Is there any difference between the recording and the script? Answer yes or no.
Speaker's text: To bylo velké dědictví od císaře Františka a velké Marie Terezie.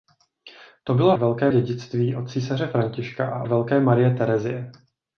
no